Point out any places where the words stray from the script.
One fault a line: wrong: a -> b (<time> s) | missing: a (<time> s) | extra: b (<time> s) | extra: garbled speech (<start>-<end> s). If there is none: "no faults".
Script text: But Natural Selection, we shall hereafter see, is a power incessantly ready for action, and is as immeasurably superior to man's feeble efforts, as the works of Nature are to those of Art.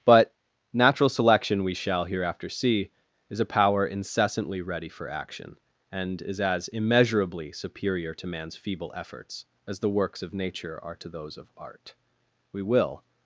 extra: We will (12.5 s)